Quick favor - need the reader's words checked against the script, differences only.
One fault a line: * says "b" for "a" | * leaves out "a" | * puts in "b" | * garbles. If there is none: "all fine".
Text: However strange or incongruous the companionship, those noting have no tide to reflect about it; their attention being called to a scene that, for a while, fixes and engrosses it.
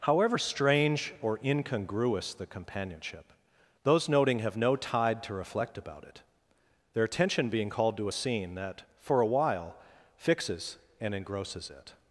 all fine